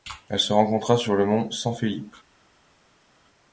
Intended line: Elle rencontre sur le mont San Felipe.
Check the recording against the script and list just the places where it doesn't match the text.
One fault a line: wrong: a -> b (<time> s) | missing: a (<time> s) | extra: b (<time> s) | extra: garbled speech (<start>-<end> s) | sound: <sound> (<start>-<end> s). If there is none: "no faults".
extra: se (0.4 s)